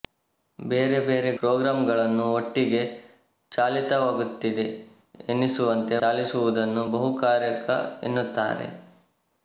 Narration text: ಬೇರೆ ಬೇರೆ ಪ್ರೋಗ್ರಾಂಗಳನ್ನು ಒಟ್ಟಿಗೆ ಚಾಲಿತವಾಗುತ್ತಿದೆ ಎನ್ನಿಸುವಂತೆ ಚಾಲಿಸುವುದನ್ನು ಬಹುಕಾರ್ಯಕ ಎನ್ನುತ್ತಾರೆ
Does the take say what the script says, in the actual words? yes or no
yes